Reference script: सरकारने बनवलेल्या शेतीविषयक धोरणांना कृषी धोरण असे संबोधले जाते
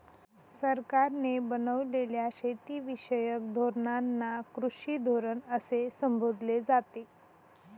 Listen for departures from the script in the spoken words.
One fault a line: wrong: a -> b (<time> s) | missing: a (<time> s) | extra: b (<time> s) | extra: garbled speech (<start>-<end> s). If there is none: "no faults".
no faults